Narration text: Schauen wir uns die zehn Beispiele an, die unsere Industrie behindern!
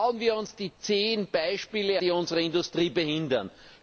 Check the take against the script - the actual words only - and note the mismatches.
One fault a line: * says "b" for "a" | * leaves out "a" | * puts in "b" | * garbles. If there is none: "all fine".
* leaves out "an"